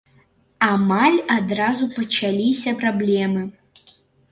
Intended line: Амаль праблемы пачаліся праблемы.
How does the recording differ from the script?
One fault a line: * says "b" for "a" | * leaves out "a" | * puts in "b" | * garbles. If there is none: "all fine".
* says "адразу" for "праблемы"